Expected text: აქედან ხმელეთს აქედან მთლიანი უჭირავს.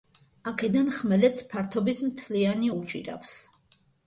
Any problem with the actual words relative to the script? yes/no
yes